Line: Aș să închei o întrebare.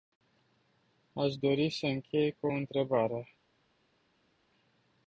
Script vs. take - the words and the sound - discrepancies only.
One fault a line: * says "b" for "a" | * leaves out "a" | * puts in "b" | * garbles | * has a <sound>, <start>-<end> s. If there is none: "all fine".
* puts in "dori"
* puts in "cu"